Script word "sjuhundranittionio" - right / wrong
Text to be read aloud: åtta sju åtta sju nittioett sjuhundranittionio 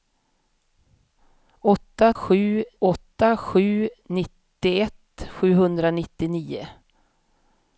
right